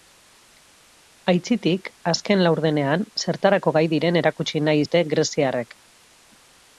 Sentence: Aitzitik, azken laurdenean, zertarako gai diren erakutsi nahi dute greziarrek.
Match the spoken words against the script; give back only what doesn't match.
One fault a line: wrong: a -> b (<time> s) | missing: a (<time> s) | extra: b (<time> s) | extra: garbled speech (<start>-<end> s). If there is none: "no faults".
no faults